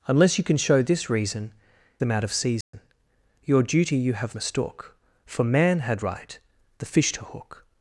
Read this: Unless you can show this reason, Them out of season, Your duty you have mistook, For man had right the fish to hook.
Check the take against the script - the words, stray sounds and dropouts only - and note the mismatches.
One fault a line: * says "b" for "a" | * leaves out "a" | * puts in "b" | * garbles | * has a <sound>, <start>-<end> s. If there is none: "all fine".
* has a dropout, 2.6-2.7 s